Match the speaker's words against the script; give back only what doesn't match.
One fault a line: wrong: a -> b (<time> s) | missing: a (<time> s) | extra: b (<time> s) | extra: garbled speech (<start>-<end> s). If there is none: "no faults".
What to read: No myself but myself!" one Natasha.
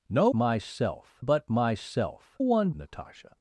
no faults